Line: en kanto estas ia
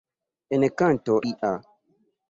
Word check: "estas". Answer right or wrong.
wrong